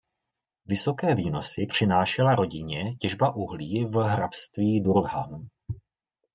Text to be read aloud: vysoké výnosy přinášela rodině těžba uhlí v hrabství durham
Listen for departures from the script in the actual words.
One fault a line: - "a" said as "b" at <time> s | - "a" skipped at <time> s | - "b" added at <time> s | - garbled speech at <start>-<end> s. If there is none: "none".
none